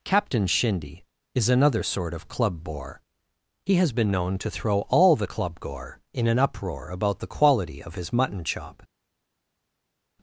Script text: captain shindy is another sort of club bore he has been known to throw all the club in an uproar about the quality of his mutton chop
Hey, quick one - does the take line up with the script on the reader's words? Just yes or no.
no